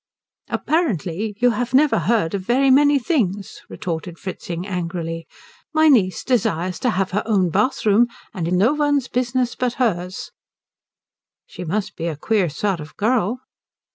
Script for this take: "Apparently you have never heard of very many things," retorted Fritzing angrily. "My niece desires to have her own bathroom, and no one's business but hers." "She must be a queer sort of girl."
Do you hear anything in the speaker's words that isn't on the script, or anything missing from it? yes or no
no